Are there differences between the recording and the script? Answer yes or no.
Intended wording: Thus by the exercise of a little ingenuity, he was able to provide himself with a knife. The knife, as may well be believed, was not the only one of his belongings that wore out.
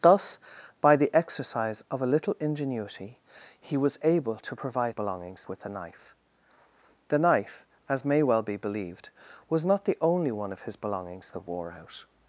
yes